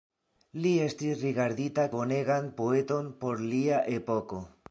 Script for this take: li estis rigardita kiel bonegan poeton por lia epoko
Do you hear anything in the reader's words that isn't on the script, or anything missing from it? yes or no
yes